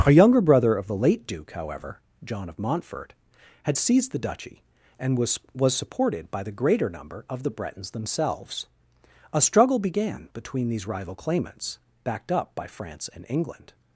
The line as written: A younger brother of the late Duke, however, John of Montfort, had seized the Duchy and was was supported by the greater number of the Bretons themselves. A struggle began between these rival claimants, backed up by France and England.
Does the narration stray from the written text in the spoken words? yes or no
no